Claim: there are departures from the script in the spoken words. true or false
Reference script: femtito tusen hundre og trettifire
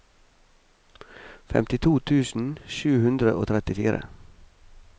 true